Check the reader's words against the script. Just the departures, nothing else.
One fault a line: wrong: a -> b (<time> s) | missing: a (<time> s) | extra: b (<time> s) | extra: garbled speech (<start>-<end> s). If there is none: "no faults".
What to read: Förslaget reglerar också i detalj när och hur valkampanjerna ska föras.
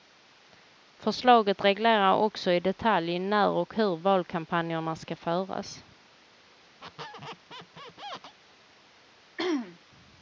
no faults